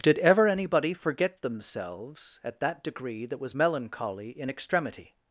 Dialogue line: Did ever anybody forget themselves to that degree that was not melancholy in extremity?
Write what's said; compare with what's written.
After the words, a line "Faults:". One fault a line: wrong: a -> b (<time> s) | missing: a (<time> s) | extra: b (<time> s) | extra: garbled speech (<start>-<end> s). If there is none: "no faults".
Did ever anybody forget themselves at that degree that was melancholy in extremity?
Faults:
wrong: to -> at (2.4 s)
missing: not (3.5 s)